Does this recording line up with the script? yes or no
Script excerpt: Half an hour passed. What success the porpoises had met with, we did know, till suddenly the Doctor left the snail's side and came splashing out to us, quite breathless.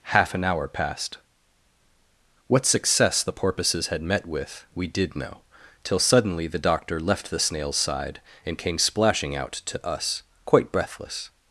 yes